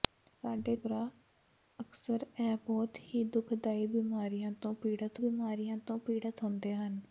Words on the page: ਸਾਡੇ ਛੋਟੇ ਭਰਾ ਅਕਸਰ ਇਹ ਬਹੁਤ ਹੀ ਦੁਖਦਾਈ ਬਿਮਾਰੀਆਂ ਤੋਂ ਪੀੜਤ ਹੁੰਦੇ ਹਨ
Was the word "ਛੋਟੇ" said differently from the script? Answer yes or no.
yes